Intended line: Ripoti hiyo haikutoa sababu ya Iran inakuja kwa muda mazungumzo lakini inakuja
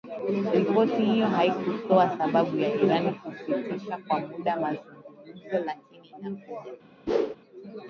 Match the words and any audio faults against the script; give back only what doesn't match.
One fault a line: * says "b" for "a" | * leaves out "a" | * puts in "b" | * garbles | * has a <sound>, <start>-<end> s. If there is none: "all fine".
* says "kusitisha" for "inakuja"
* has a whoosh, 7.1-7.4 s